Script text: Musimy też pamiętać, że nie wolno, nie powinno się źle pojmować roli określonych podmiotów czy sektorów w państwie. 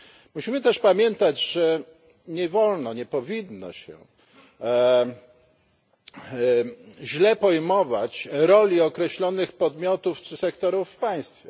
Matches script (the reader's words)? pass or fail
pass